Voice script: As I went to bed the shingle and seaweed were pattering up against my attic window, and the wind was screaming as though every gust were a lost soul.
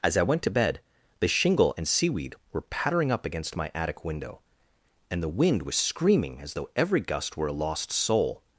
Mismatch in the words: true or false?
false